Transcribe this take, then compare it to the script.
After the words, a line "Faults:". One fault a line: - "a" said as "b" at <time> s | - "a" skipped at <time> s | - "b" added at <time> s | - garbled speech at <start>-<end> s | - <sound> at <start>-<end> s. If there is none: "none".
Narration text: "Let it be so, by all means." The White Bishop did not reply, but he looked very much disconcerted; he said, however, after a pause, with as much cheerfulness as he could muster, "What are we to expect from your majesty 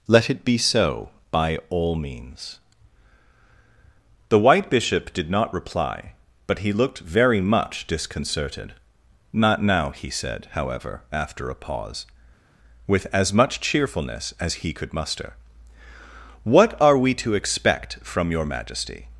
"Let it be so, by all means." The White Bishop did not reply, but he looked very much disconcerted; not now he said, however, after a pause, with as much cheerfulness as he could muster, "What are we to expect from your majesty
Faults:
- "not now" added at 9.3 s